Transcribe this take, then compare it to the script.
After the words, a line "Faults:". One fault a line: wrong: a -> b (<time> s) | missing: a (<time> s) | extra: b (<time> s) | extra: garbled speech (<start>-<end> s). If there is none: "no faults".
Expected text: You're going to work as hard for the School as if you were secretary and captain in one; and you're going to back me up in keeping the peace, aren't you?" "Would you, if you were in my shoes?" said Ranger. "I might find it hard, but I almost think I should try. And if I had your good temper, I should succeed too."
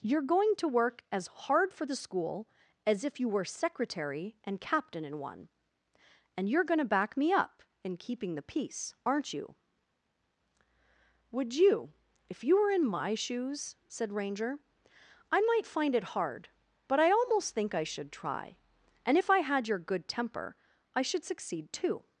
You're going to work as hard for the School as if you were secretary and captain in one; and you're going to back me up in keeping the peace, aren't you?" "Would you, if you were in my shoes?" said Ranger. "I might find it hard, but I almost think I should try. And if I had your good temper, I should succeed too."
Faults:
no faults